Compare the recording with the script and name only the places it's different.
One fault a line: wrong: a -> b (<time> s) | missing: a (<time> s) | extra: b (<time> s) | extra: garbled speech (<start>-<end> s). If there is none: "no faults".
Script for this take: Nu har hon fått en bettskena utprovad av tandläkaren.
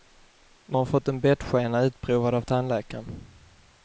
missing: har (0.8 s)